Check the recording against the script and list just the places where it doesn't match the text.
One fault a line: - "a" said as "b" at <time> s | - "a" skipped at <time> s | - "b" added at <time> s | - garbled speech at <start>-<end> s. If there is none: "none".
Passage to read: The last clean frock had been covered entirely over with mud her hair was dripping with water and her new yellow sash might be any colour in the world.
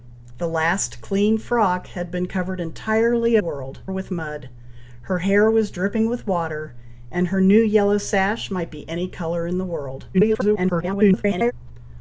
- "over" said as "world" at 3.4 s
- garbled speech at 10.1-11.5 s